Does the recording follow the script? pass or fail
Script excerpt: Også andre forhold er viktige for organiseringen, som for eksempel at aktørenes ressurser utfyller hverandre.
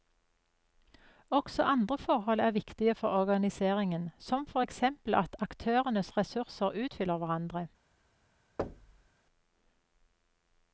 pass